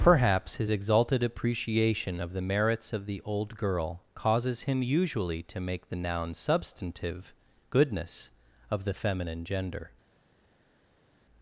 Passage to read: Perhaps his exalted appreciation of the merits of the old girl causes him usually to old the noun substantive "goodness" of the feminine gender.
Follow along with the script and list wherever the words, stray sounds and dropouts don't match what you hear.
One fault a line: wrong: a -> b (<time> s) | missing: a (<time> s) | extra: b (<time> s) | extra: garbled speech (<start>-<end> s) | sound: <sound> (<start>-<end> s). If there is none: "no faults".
wrong: old -> make (5.6 s)